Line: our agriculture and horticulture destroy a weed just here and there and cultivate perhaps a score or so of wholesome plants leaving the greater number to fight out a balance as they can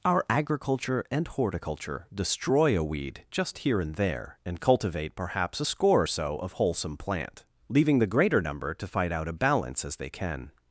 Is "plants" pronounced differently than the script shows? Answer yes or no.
yes